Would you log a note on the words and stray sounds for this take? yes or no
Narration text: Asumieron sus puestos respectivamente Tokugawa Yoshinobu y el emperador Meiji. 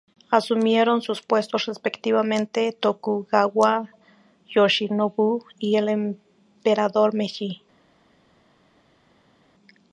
no